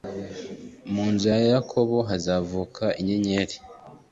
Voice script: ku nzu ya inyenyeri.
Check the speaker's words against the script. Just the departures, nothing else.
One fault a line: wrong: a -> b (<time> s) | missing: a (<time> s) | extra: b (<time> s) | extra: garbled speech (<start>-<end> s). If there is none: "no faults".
wrong: ku -> mu (0.9 s)
extra: yakobo hazavuka (1.5 s)